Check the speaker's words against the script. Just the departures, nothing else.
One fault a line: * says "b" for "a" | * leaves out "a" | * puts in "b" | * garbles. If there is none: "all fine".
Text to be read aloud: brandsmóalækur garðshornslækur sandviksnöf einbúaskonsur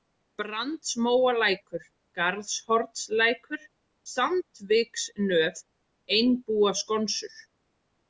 all fine